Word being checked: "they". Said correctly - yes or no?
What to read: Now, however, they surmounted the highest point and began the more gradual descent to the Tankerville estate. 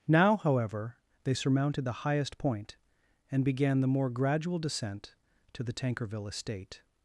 yes